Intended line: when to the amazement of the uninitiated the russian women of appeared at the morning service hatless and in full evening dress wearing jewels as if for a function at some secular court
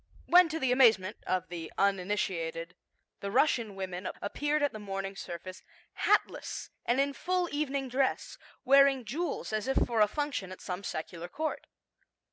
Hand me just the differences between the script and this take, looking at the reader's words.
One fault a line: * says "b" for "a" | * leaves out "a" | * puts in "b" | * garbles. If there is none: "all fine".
all fine